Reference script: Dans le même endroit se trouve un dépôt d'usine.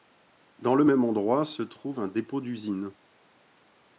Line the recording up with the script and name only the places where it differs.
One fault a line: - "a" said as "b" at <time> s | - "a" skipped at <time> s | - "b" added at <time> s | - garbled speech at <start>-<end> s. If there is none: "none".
none